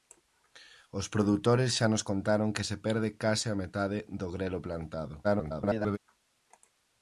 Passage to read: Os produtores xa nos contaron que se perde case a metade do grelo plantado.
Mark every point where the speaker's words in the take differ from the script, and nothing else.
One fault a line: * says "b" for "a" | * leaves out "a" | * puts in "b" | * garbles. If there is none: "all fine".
* garbles